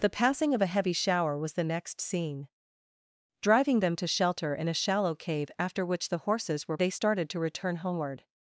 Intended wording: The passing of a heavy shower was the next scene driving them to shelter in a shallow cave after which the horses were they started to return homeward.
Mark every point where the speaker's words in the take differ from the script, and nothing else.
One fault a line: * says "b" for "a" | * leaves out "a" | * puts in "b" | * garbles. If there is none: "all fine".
all fine